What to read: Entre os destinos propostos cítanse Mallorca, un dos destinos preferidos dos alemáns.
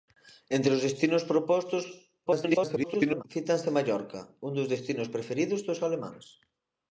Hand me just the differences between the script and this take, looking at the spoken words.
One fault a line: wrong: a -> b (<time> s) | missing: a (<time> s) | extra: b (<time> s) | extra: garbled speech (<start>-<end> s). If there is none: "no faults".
extra: garbled speech (2.3-3.2 s)